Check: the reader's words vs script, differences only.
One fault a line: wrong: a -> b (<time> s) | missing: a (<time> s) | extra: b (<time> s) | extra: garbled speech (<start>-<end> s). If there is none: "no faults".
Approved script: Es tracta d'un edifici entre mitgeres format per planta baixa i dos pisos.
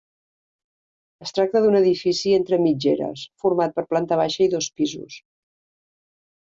no faults